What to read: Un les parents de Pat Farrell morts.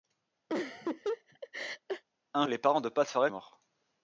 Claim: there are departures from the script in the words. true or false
false